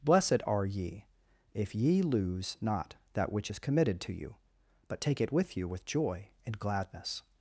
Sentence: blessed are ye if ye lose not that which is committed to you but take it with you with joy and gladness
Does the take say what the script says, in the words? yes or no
yes